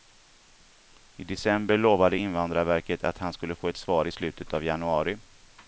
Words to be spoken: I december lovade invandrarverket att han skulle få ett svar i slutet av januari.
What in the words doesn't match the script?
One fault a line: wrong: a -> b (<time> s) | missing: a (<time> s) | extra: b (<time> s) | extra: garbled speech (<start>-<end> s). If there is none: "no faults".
no faults